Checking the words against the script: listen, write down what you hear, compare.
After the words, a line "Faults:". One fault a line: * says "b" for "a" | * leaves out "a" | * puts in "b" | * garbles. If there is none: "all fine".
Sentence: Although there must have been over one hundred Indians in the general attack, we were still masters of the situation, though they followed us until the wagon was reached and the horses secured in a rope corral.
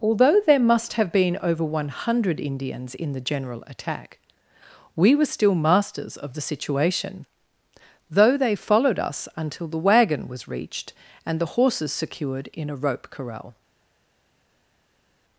Although there must have been over one hundred Indians in the general attack, we were still masters of the situation, though they followed us until the wagon was reached and the horses secured in a rope corral.
Faults:
all fine